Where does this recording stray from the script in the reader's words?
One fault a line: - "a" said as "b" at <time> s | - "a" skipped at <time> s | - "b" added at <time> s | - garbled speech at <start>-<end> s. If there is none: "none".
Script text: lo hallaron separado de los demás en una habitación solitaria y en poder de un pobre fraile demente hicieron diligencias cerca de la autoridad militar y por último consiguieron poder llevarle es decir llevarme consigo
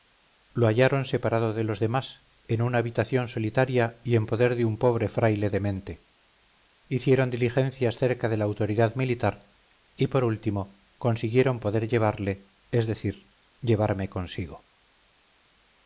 none